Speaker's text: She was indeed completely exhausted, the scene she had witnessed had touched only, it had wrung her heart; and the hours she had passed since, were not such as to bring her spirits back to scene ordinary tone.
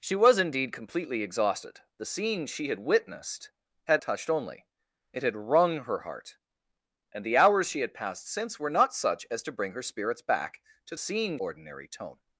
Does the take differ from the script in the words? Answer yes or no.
no